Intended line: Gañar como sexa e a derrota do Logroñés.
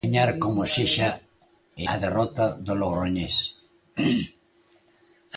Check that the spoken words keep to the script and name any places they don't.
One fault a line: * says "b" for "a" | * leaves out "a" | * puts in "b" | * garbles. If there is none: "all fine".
all fine